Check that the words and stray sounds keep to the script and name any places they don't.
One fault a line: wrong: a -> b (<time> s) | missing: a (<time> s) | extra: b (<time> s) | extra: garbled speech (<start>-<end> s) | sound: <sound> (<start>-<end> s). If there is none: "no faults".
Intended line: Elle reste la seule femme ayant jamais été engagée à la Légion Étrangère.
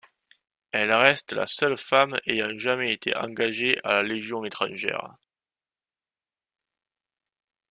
no faults